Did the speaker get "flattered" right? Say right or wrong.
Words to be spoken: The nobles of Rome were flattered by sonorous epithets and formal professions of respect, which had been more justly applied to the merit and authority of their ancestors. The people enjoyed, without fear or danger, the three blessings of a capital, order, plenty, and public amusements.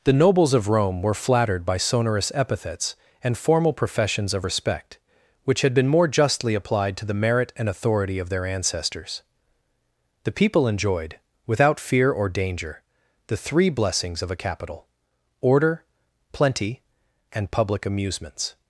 right